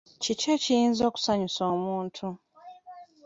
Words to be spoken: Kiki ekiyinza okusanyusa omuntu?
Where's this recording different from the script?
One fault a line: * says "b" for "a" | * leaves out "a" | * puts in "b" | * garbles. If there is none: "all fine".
all fine